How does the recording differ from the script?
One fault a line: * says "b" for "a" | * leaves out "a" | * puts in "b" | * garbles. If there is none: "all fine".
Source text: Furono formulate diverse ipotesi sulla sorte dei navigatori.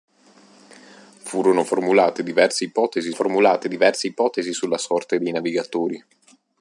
* puts in "formulate diverse ipotesi"